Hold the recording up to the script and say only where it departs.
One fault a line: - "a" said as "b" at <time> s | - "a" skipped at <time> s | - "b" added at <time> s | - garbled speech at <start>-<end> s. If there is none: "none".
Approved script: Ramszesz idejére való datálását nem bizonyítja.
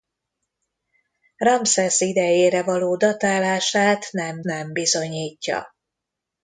- "nem" added at 4.4 s